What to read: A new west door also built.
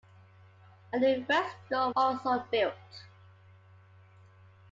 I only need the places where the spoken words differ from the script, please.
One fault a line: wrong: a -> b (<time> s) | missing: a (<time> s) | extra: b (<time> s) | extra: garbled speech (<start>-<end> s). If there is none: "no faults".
no faults